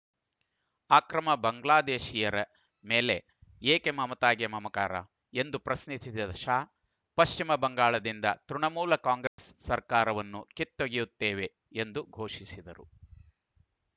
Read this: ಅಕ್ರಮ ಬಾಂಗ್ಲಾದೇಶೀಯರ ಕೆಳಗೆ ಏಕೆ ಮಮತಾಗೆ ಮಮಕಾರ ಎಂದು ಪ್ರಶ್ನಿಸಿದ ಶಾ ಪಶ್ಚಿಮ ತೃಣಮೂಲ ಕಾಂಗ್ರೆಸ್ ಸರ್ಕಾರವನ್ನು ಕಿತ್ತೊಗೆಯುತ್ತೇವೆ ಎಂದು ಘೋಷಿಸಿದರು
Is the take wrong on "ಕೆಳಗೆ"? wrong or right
wrong